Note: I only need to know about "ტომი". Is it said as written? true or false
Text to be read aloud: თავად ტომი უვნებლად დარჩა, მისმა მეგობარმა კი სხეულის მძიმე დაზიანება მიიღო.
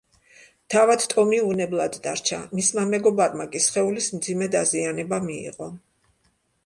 true